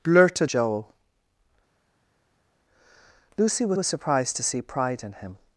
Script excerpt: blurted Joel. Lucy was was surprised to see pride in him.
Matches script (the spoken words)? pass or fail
pass